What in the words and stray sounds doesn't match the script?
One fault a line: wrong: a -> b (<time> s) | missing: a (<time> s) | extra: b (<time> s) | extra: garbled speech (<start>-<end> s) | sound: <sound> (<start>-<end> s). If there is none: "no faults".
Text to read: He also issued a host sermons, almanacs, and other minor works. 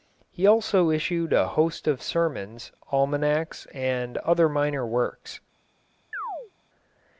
extra: of (1.9 s)
sound: chirp (6.1-6.5 s)